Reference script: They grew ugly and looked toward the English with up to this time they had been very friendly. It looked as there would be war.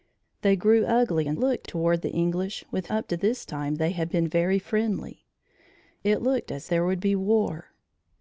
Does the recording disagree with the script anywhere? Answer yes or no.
no